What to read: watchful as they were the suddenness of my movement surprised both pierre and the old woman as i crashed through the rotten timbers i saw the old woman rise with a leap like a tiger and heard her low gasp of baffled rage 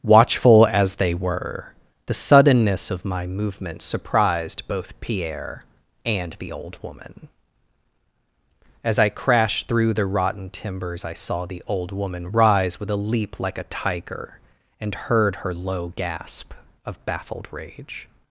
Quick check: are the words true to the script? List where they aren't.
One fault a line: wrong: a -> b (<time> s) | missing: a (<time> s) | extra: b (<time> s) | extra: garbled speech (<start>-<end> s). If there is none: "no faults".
no faults